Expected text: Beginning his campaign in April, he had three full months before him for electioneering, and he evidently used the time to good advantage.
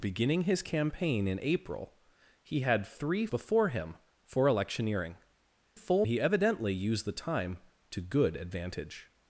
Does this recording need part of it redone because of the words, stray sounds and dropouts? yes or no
yes